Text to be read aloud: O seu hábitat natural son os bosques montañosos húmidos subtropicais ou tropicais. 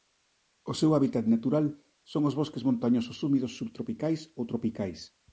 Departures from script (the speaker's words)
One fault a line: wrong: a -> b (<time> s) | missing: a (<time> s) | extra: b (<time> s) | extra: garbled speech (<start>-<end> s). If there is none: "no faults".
no faults